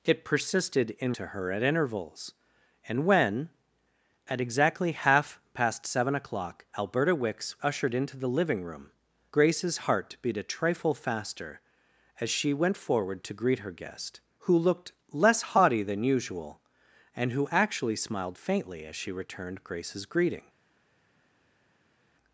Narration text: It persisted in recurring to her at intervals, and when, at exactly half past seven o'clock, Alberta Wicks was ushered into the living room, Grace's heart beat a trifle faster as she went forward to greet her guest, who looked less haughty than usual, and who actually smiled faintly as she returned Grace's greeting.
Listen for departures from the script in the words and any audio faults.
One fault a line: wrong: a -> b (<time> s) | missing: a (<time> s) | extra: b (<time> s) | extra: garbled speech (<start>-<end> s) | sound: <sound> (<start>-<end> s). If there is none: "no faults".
missing: recurring (1.1 s)
missing: was (7.6 s)